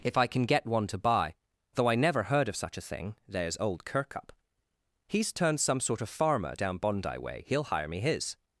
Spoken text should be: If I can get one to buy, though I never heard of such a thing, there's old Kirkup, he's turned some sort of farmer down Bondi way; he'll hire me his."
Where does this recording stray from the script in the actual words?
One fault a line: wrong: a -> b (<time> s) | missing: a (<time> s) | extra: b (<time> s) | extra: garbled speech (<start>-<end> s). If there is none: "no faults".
no faults